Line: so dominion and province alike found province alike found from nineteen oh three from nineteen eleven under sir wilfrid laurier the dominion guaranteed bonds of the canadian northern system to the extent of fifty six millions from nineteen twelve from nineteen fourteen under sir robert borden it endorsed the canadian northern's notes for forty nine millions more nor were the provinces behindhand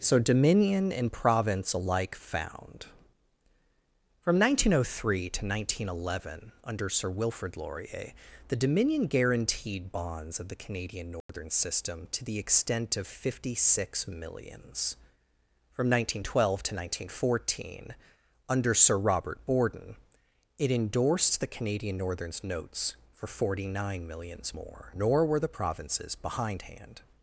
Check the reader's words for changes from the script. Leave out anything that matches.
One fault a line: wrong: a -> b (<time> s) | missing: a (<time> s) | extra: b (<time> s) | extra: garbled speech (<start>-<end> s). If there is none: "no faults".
missing: province alike found (2.9 s)
wrong: from -> to (5.3 s)
wrong: from -> to (16.6 s)